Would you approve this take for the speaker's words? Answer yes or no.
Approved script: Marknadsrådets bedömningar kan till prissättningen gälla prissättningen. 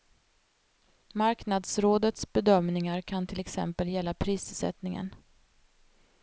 no